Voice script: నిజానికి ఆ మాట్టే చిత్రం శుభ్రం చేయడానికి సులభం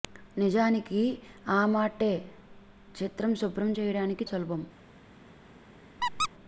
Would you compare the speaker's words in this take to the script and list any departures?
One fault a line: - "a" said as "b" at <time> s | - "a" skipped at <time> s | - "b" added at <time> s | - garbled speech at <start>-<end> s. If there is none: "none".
none